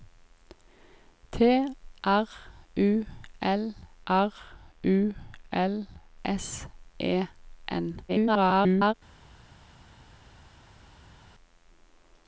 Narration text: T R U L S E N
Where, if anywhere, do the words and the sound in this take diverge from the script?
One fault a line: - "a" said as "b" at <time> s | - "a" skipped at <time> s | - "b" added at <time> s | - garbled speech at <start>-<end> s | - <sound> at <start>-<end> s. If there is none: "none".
- "R U L" added at 4.1 s
- garbled speech at 8.1-8.9 s